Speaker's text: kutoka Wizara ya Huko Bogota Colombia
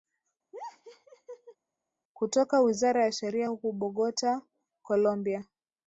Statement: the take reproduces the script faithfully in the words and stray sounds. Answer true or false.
false